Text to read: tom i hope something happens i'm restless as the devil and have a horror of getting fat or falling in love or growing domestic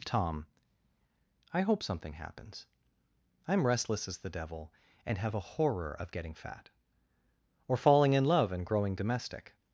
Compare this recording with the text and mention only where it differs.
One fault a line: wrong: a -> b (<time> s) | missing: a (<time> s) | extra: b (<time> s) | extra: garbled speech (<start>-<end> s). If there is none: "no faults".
wrong: or -> and (8.5 s)